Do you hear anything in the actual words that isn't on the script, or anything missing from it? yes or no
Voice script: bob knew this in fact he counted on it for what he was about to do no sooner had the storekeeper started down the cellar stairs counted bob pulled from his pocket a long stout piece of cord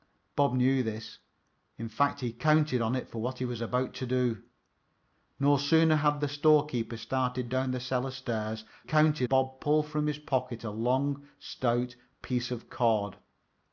no